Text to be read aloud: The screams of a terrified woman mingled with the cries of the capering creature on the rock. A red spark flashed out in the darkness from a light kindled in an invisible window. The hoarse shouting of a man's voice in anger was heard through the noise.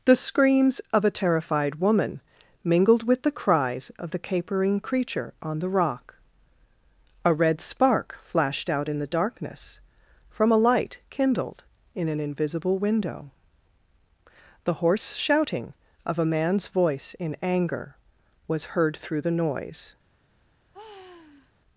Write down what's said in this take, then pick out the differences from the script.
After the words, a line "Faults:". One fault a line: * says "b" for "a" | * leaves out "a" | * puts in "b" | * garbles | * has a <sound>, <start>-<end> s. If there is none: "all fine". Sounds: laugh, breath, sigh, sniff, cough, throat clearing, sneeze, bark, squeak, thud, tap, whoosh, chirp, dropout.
The screams of a terrified woman mingled with the cries of the capering creature on the rock. A red spark flashed out in the darkness from a light kindled in an invisible window. The hoarse shouting of a man's voice in anger was heard through the noise.
Faults:
* has a sigh, 20.7-21.5 s